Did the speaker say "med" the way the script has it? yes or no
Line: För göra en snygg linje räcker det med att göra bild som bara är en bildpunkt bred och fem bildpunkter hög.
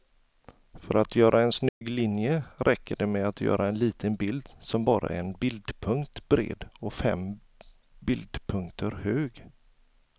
yes